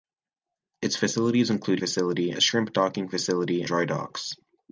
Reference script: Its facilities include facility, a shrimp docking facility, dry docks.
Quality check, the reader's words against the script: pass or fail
pass